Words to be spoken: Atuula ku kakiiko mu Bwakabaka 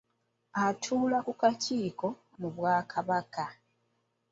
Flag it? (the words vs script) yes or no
no